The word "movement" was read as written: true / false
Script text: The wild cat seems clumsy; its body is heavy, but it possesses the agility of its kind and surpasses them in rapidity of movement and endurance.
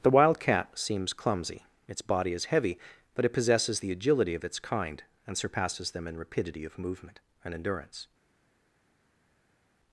true